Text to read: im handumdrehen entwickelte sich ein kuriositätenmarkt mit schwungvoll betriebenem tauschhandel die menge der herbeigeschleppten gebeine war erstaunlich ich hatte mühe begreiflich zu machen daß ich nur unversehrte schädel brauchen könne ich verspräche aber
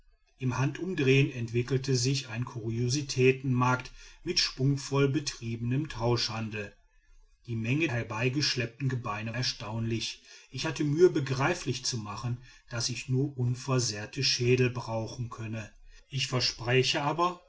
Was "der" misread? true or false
true